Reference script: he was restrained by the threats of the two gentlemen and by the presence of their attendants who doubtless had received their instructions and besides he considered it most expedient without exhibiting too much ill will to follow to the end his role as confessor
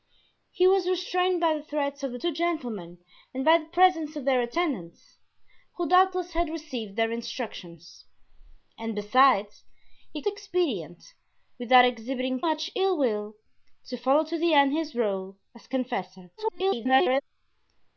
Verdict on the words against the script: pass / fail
fail